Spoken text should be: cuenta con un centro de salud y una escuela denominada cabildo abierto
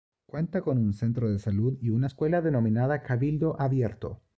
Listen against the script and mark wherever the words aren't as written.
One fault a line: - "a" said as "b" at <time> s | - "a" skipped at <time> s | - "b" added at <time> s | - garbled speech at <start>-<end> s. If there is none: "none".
none